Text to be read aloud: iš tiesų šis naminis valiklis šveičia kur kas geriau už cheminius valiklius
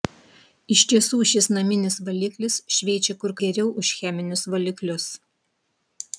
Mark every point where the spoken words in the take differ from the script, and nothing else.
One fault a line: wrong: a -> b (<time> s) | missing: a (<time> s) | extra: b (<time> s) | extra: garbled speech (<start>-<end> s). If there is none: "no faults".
missing: kas (3.4 s)